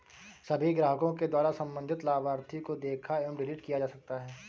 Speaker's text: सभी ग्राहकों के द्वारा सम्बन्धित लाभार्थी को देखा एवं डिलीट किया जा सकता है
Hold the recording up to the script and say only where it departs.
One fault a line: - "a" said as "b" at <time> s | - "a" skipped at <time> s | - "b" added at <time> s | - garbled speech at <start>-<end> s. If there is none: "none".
none